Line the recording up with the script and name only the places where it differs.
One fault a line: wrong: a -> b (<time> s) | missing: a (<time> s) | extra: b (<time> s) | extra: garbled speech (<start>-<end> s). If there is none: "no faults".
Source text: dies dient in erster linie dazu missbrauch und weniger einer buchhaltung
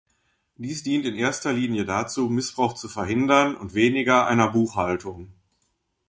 extra: zu verhindern (2.7 s)